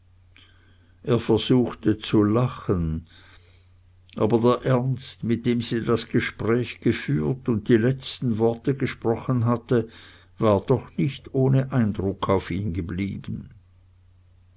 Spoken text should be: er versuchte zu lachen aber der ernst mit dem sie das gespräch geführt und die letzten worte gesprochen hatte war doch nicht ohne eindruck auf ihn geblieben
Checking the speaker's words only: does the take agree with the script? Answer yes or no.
yes